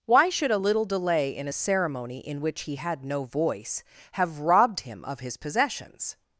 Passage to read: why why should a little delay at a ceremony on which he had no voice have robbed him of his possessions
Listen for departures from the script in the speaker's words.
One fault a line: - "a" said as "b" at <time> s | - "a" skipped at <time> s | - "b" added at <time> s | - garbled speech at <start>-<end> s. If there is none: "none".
- "why" skipped at 0.3 s
- "at" said as "in" at 1.3 s
- "on" said as "in" at 2.2 s